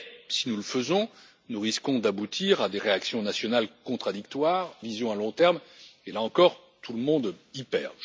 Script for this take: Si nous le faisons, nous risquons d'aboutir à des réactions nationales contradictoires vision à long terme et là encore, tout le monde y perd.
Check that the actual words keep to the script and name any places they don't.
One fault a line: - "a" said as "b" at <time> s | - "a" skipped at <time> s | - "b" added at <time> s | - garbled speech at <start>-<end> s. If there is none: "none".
none